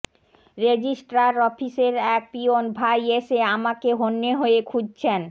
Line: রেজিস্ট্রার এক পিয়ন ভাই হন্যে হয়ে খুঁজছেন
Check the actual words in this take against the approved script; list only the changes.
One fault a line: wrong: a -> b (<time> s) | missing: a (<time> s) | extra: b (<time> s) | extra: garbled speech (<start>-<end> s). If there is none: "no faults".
extra: অফিসের (1.5 s)
extra: এসে আমাকে (3.2 s)